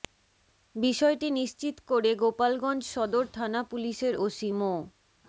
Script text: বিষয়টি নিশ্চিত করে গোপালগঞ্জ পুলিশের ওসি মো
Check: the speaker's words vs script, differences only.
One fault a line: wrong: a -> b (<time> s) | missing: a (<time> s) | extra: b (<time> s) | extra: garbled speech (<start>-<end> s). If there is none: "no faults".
extra: সদর থানা (2.9 s)